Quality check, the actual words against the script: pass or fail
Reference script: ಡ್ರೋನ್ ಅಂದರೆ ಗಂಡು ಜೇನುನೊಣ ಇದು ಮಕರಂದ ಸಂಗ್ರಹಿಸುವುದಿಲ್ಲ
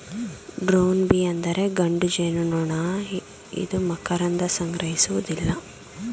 fail